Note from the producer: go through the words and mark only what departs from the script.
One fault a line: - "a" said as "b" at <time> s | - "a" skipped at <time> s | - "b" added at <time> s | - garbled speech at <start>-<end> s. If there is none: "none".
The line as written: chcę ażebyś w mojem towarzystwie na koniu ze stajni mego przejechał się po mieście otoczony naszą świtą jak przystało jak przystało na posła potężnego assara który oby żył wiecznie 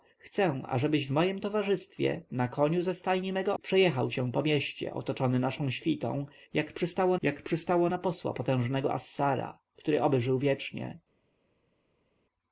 none